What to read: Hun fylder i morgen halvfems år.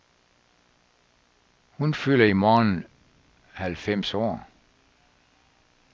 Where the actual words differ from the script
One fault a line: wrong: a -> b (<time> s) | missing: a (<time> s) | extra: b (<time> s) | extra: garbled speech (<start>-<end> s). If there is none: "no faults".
no faults